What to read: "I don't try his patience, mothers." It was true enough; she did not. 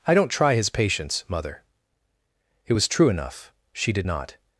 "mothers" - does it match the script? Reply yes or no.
no